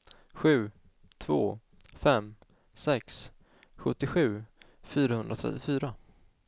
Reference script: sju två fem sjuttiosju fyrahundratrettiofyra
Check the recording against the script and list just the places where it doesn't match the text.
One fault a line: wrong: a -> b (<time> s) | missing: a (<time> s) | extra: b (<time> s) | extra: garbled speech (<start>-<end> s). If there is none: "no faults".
extra: sex (2.7 s)